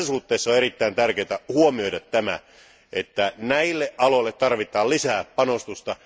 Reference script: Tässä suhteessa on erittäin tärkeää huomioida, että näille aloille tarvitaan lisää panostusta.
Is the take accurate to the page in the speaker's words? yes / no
yes